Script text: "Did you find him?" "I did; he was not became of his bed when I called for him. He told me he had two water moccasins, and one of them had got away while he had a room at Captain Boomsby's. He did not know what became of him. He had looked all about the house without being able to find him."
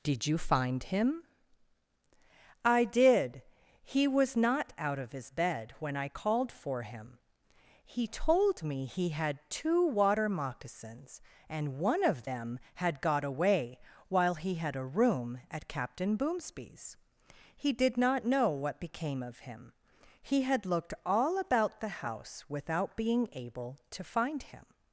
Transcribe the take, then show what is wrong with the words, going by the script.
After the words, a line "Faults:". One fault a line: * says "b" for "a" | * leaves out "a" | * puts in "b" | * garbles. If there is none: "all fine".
"Did you find him?" "I did; he was not out of his bed when I called for him. He told me he had two water moccasins, and one of them had got away while he had a room at Captain Boomsby's. He did not know what became of him. He had looked all about the house without being able to find him."
Faults:
* says "out" for "became"